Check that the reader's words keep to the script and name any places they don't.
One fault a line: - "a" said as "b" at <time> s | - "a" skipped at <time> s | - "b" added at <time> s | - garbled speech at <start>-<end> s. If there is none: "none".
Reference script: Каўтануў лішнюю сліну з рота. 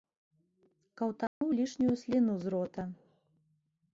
none